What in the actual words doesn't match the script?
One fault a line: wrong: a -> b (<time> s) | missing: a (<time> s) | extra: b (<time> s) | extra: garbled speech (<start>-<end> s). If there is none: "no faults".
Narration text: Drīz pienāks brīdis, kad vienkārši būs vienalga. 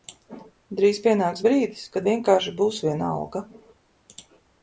no faults